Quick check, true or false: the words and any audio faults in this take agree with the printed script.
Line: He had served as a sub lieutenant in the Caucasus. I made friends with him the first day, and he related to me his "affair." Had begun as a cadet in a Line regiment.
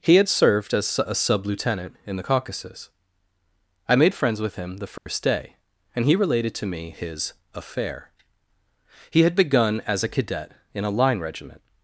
false